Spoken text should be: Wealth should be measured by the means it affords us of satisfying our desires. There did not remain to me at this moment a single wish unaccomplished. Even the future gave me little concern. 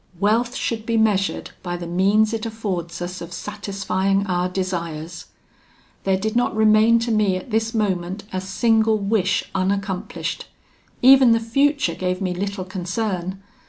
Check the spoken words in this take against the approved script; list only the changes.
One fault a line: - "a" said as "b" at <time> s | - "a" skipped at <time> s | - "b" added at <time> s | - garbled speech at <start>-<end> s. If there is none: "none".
none